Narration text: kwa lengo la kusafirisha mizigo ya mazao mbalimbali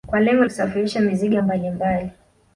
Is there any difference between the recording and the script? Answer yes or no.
yes